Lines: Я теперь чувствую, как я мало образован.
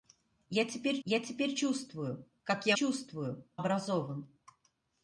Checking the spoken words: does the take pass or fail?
fail